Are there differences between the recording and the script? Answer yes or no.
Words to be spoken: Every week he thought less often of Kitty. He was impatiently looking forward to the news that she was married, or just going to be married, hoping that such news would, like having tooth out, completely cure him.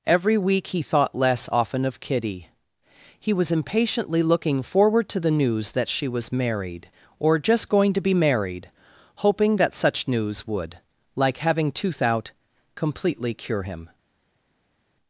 no